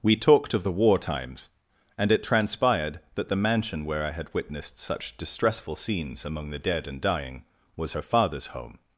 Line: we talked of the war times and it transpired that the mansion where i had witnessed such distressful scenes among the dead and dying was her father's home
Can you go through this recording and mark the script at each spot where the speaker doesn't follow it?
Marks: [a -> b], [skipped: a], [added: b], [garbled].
we talked of the war times and it transpired that the mansion where i had witnessed such distressful scenes among the dead and dying was her father's home